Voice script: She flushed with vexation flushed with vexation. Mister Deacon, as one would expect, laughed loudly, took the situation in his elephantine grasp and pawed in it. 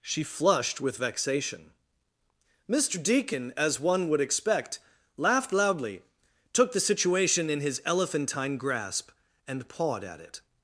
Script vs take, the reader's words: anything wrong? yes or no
yes